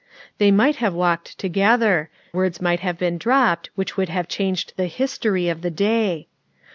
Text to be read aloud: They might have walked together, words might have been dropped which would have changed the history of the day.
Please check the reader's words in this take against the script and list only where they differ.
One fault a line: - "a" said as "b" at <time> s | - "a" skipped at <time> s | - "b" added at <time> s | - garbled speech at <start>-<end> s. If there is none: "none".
none